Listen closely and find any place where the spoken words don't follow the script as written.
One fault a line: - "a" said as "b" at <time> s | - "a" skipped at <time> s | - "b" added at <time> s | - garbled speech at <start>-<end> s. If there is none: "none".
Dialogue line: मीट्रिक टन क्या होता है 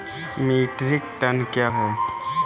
- "होता" skipped at 1.7 s